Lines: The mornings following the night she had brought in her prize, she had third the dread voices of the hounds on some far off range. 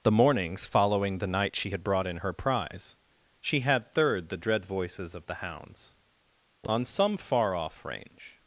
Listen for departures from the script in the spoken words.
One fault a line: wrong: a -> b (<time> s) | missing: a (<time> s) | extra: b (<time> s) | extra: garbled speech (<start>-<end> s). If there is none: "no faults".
no faults